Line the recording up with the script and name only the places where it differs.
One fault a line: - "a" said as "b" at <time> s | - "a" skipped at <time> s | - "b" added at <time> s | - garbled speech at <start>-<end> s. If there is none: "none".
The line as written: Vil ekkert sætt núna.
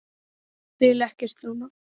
- "sætt" skipped at 1.4 s